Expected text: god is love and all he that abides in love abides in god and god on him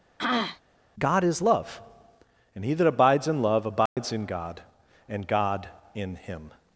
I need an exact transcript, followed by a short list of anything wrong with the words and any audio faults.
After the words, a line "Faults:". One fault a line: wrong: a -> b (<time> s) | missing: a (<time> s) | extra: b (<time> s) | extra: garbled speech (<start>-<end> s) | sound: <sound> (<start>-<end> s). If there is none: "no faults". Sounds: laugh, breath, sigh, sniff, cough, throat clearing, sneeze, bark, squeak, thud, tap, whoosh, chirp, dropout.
god is love and he that abides in love abides in god and god in him
Faults:
sound: throat clearing (0.2-0.6 s)
missing: all (2.6 s)
sound: dropout (3.9-4.0 s)
wrong: on -> in (5.9 s)